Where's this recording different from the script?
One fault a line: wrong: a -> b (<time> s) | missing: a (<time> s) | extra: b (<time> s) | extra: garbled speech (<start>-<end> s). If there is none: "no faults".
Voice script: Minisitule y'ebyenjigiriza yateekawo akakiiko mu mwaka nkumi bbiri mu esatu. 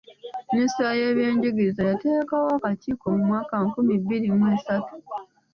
no faults